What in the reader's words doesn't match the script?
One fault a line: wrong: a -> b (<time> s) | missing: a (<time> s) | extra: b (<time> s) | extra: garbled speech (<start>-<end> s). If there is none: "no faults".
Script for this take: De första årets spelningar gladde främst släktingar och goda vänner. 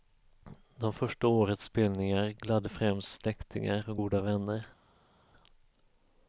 no faults